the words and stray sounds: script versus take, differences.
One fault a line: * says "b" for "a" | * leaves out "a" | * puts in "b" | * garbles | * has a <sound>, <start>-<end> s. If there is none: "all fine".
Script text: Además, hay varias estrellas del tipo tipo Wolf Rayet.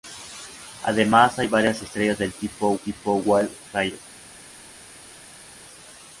all fine